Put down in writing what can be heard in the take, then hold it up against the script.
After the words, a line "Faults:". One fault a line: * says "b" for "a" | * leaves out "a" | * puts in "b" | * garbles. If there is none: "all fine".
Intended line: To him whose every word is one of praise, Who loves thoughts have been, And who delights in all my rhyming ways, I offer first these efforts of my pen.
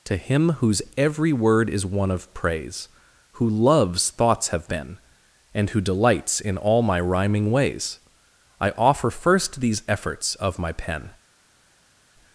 To him whose every word is one of praise, Who loves thoughts have been, And who delights in all my rhyming ways, I offer first these efforts of my pen.
Faults:
all fine